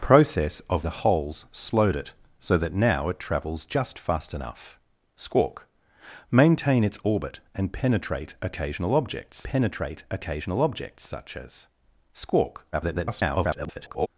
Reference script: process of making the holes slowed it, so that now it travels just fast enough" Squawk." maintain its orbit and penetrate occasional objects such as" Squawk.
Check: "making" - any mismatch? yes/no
yes